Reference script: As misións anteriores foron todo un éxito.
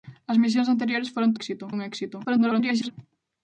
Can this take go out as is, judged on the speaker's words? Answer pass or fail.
fail